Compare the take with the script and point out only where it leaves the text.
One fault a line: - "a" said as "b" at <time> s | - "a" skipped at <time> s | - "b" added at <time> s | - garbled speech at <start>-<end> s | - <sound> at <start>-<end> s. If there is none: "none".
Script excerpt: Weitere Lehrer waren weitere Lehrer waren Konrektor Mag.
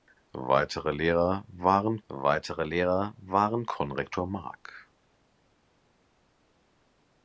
none